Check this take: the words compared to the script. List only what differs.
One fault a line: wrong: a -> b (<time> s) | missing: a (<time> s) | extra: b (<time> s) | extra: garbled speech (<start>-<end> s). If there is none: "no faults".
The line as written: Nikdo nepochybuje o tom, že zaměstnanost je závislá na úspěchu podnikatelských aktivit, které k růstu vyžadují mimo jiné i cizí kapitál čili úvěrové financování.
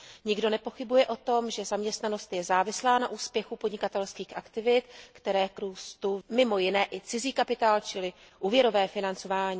missing: vyžadují (6.2 s)